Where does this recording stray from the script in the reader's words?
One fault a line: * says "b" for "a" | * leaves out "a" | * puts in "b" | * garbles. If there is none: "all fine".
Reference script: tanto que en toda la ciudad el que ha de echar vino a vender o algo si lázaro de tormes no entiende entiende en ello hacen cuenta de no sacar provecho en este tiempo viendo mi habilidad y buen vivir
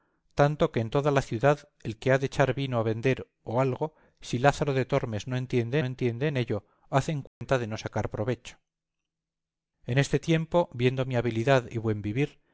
all fine